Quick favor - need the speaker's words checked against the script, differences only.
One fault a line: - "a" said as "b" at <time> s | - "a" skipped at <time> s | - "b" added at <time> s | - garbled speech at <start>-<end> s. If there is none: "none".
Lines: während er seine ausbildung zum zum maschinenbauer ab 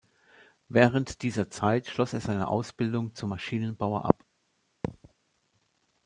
- "dieser zeit schloss" added at 1.2 s
- "zum" skipped at 3.3 s